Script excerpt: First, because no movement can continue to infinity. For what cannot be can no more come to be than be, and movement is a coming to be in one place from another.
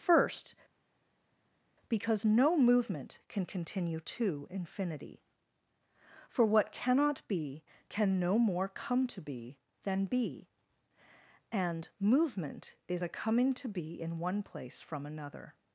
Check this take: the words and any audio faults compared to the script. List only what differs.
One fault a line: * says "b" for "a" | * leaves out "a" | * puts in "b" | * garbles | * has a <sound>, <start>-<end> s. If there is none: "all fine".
all fine